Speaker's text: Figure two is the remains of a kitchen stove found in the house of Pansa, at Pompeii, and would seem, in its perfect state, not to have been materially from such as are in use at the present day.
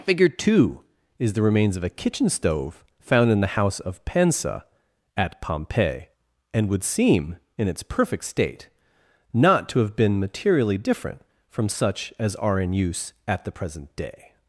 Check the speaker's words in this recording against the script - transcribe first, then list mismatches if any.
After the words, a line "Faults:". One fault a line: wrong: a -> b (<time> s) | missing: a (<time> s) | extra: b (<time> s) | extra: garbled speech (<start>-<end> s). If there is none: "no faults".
Figure two is the remains of a kitchen stove found in the house of Pansa, at Pompeii, and would seem, in its perfect state, not to have been materially different from such as are in use at the present day.
Faults:
extra: different (10.8 s)